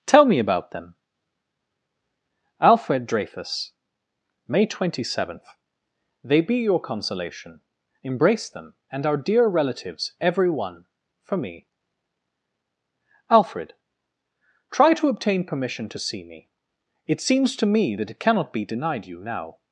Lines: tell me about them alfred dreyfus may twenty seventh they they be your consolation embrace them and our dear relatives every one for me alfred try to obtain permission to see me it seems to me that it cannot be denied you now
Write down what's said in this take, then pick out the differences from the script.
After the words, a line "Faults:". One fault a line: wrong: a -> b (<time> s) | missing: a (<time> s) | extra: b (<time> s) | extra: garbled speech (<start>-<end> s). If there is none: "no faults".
tell me about them alfred dreyfus may twenty seventh they be your consolation embrace them and our dear relatives every one for me alfred try to obtain permission to see me it seems to me that it cannot be denied you now
Faults:
missing: they (6.4 s)